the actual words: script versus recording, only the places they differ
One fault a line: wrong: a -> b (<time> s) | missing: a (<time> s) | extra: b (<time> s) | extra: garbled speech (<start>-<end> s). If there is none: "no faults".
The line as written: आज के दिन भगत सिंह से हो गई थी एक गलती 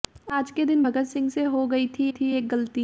extra: थी (2.1 s)